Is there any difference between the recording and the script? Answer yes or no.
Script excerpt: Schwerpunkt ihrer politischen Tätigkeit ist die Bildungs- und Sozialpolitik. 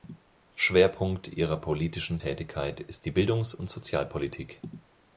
no